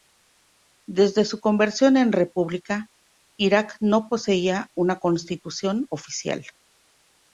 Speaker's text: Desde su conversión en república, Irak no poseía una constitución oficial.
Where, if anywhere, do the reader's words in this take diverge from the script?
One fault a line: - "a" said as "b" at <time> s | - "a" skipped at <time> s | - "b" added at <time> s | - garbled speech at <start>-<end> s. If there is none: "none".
none